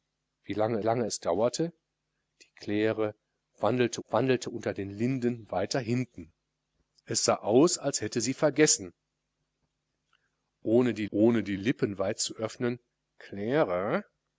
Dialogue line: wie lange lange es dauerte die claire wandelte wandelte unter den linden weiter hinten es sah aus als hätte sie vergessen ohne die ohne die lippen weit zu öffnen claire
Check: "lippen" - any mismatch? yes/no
no